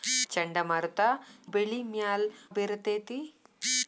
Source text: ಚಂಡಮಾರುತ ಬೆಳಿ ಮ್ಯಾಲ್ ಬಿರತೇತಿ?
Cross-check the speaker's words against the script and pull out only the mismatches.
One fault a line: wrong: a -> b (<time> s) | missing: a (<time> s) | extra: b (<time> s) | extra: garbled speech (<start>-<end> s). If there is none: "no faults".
no faults